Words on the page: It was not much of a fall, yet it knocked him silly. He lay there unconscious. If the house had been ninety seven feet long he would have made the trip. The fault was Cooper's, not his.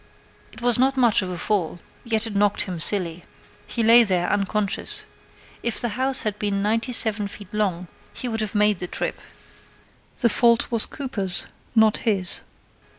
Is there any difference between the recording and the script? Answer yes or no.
no